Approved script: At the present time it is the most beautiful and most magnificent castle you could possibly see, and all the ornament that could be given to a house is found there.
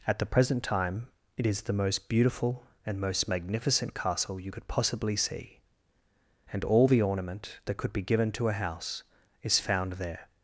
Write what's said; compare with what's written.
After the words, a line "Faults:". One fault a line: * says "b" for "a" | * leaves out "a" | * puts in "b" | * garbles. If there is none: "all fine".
At the present time it is the most beautiful and most magnificent castle you could possibly see, and all the ornament that could be given to a house is found there.
Faults:
all fine